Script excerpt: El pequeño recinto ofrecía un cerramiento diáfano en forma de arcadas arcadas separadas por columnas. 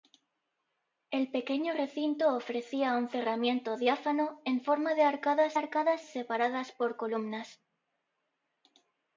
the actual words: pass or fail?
pass